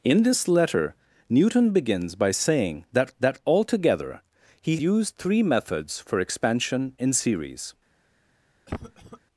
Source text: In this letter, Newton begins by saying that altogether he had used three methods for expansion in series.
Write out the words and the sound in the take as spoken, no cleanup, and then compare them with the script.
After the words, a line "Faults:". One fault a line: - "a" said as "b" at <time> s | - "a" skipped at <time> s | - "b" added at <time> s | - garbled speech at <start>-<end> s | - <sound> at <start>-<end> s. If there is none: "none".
In this letter, Newton begins by saying that that altogether he used three methods for expansion in series.
Faults:
- "that" added at 3.2 s
- "had" skipped at 4.8 s
- cough at 8.7-9.2 s